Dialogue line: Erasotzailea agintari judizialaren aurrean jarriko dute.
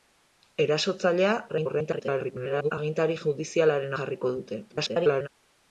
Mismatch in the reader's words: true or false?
true